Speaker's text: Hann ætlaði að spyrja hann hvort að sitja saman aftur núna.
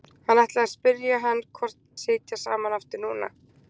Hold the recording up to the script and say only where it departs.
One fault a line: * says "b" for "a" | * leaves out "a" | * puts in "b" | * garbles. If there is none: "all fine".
all fine